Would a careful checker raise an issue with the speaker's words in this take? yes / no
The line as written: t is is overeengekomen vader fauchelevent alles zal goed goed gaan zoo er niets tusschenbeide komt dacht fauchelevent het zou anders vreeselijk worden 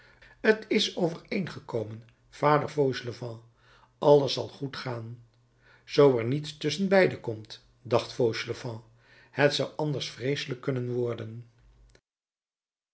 yes